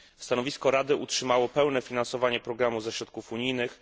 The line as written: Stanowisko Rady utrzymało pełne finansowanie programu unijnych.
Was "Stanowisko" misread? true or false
false